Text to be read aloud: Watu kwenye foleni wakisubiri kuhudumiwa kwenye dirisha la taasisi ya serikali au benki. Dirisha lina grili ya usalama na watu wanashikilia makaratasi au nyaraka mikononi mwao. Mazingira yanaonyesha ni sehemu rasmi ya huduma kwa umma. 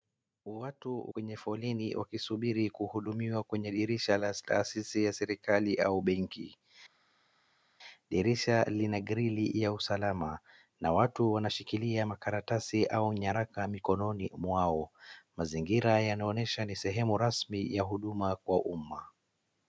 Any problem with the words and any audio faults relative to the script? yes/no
no